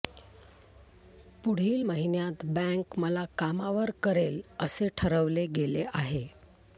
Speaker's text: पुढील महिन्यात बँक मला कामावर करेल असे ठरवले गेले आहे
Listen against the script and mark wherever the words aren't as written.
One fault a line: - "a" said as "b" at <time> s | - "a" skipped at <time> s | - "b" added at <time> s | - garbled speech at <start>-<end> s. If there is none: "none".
none